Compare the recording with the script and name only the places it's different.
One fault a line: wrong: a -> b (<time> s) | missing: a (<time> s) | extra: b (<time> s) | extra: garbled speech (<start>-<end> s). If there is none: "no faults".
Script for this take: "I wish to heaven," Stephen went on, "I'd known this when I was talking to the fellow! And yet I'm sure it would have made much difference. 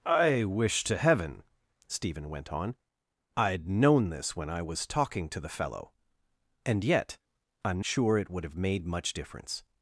no faults